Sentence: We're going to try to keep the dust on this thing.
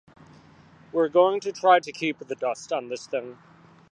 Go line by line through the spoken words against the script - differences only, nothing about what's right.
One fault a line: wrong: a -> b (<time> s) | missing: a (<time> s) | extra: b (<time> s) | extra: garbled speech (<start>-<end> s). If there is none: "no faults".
no faults